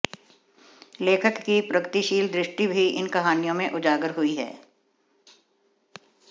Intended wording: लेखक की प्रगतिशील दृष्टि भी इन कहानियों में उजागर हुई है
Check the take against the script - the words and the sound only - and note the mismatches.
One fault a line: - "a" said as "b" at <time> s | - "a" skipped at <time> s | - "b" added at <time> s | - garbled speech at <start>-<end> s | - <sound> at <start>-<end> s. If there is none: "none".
none